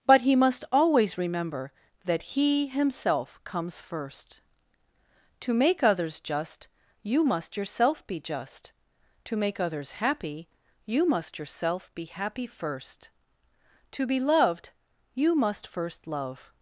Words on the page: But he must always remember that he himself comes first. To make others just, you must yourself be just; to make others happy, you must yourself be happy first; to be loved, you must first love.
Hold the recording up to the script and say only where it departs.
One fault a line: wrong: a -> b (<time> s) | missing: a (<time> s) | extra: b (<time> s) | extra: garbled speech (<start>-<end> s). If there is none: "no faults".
no faults